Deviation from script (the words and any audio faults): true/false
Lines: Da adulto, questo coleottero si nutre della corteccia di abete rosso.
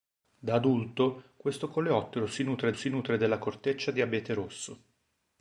true